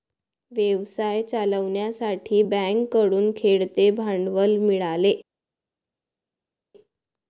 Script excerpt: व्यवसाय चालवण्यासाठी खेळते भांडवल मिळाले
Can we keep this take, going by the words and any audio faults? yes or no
no